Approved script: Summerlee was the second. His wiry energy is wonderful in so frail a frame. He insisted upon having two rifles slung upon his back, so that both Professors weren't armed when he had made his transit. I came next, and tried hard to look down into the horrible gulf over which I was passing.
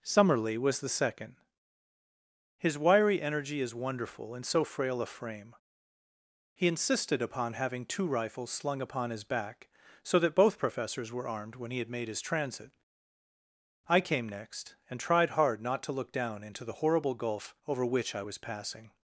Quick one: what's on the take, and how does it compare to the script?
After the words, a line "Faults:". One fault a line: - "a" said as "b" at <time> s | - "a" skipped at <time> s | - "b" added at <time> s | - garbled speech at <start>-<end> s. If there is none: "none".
Summerlee was the second. His wiry energy is wonderful in so frail a frame. He insisted upon having two rifles slung upon his back, so that both Professors were armed when he had made his transit. I came next, and tried hard not to look down into the horrible gulf over which I was passing.
Faults:
- "weren't" said as "were" at 11.1 s
- "not" added at 15.6 s